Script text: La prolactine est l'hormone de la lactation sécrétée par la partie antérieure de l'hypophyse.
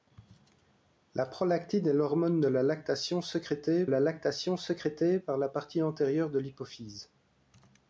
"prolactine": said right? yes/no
yes